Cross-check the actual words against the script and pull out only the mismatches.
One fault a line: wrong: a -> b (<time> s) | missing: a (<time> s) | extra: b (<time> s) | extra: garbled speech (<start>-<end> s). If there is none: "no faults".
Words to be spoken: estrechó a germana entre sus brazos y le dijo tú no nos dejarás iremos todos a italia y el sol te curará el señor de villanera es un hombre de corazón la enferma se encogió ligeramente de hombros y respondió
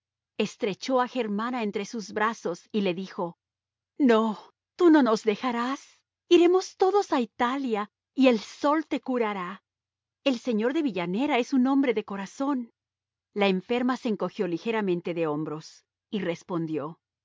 extra: no (4.0 s)